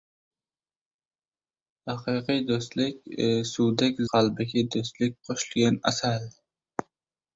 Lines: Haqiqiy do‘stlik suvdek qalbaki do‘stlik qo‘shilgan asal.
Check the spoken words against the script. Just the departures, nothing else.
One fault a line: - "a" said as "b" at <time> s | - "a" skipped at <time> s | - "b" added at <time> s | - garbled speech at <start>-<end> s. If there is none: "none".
none